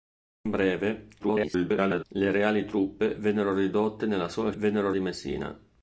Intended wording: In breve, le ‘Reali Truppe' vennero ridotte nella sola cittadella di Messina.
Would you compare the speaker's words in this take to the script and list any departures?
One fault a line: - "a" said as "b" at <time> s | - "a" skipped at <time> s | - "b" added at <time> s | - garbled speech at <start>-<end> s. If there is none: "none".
- garbled speech at 1.2-2.0 s
- "cittadella" said as "vennero" at 4.5 s